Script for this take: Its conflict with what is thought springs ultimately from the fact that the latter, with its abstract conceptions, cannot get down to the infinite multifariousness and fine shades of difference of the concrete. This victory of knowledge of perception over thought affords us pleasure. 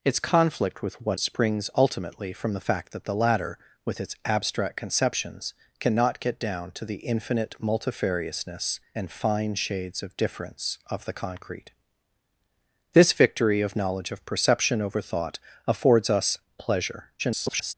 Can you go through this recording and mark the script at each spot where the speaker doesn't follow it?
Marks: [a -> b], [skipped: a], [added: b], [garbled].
Its conflict with what [skipped: is thought] springs ultimately from the fact that the latter, with its abstract conceptions, cannot get down to the infinite multifariousness and fine shades of difference of the concrete. This victory of knowledge of perception over thought affords us pleasure. [garbled]